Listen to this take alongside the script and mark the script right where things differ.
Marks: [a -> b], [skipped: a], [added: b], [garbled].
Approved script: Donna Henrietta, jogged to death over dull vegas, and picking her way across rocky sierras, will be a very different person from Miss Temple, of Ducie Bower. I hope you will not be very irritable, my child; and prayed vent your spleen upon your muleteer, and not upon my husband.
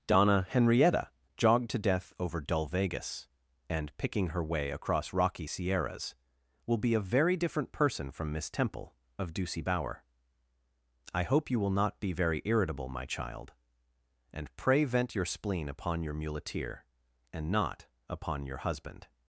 Donna Henrietta, jogged to death over dull vegas, and picking her way across rocky sierras, will be a very different person from Miss Temple, of Ducie Bower. I hope you will not be very irritable, my child; and [prayed -> pray] vent your spleen upon your muleteer, and not upon [my -> your] husband.